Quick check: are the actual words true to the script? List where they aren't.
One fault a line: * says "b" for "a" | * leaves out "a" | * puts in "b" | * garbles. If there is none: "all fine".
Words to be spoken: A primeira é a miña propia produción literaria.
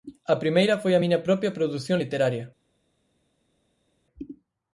* says "foi" for "é"